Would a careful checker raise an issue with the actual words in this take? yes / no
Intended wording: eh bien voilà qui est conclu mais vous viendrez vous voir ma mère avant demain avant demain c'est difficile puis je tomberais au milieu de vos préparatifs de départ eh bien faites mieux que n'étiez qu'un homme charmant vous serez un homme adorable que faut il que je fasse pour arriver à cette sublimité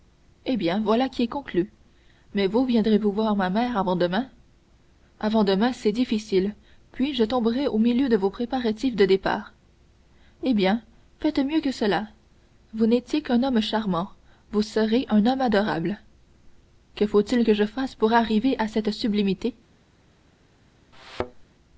yes